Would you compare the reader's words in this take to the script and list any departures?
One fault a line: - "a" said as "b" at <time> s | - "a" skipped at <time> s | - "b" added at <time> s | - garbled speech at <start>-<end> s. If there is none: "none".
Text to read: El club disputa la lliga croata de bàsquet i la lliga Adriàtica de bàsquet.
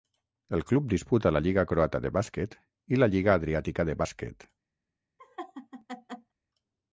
none